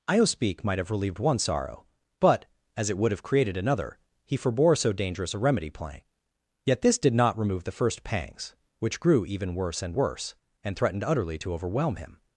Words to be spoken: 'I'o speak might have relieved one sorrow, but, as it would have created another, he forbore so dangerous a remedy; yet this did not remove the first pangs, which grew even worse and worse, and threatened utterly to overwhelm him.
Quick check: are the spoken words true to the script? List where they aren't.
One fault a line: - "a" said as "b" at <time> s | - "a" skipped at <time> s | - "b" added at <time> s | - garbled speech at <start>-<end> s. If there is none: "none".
- "playing" added at 5.7 s